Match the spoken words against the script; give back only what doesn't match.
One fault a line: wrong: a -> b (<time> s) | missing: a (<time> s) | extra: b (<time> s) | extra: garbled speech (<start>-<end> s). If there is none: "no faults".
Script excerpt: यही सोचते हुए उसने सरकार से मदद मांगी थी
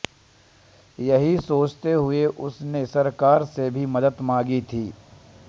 extra: भी (3.7 s)